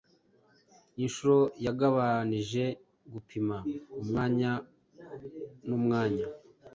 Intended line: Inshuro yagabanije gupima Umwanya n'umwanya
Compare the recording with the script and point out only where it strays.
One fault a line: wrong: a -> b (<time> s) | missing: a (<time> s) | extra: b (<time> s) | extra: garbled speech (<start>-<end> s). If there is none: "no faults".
no faults